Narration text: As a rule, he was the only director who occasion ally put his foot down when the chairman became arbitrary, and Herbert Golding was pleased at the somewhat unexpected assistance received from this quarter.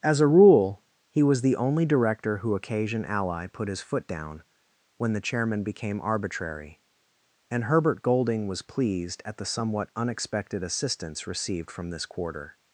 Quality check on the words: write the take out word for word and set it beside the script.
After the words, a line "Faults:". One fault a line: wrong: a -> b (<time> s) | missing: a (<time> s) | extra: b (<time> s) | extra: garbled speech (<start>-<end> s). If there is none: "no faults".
As a rule, he was the only director who occasion ally put his foot down when the chairman became arbitrary, and Herbert Golding was pleased at the somewhat unexpected assistance received from this quarter.
Faults:
no faults